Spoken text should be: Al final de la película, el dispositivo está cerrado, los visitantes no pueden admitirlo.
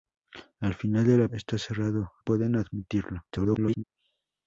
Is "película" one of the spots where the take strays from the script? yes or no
yes